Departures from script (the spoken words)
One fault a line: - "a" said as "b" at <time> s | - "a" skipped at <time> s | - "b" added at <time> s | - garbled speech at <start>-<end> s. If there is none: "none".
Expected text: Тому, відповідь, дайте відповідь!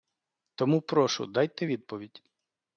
- "відповідь" said as "прошу" at 0.8 s